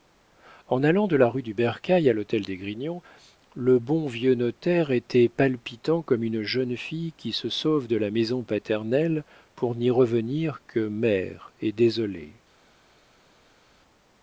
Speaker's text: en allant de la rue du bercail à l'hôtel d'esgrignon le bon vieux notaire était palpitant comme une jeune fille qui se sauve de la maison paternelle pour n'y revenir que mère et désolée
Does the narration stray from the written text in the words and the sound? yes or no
no